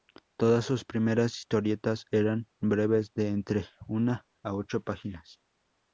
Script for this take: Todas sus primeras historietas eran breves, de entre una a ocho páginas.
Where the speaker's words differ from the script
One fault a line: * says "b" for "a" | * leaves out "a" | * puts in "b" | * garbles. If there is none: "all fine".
all fine